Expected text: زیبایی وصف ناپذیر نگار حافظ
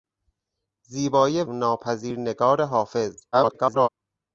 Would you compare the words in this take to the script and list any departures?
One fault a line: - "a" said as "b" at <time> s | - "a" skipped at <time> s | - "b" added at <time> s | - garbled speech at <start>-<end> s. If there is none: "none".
- "وصف" skipped at 1.4 s
- garbled speech at 3.3-3.9 s